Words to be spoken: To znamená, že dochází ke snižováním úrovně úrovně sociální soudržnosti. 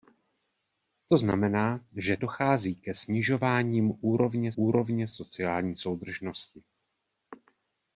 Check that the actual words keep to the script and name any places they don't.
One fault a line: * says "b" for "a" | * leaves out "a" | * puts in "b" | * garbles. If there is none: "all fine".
all fine